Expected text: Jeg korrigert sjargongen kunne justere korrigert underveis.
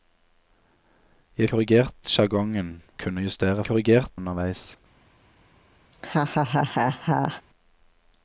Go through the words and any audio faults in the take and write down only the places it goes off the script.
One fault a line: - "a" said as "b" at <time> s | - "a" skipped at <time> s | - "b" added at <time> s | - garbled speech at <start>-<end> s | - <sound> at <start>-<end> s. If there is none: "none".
- laugh at 5.9-7.4 s